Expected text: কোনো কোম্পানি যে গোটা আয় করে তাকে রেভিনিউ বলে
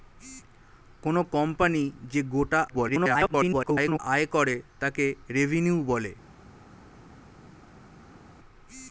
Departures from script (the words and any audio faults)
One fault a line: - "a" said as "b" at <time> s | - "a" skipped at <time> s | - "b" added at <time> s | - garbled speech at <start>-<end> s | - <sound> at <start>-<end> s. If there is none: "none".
- garbled speech at 2.7-4.0 s